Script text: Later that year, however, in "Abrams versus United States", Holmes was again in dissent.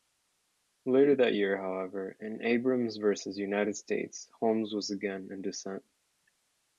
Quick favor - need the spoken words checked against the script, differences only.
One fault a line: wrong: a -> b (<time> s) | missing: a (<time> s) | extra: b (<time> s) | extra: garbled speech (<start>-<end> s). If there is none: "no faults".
no faults